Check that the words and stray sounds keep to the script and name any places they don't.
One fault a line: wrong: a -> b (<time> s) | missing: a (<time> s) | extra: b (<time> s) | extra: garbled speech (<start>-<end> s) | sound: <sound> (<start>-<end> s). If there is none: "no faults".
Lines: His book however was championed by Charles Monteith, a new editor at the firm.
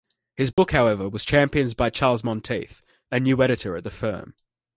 sound: dropout (0.5-0.6 s)